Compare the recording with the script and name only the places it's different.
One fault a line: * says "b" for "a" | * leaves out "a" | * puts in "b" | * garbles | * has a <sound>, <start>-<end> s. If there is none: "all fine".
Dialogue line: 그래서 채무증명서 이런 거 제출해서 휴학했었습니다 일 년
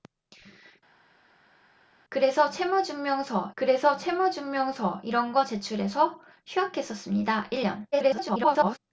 * puts in "그래서 채무증명서"
* garbles